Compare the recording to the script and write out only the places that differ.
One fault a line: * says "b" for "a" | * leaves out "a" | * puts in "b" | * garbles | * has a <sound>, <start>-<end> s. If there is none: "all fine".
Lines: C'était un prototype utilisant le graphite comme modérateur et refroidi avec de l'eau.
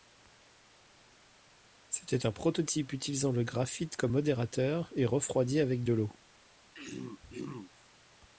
* has a throat clearing, 6.7-7.7 s